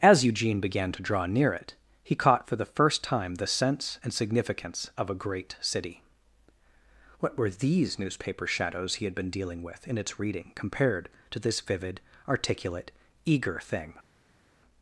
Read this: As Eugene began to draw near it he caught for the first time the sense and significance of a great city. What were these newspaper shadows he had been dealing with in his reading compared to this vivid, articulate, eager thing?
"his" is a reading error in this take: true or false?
true